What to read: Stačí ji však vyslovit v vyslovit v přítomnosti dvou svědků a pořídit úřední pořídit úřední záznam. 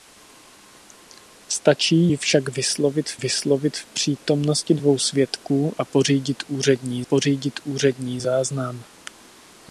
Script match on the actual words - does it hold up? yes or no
yes